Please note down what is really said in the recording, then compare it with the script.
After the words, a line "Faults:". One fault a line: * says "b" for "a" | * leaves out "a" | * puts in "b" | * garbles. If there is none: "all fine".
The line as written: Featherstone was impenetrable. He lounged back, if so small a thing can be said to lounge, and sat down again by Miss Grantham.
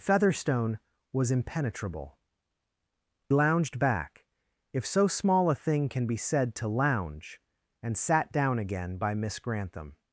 Featherstone was impenetrable. Lounged back, if so small a thing can be said to lounge, and sat down again by Miss Grantham.
Faults:
* leaves out "He"